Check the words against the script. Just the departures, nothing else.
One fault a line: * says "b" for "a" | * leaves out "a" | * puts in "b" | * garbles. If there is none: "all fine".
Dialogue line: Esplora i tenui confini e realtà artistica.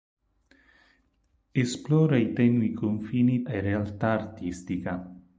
all fine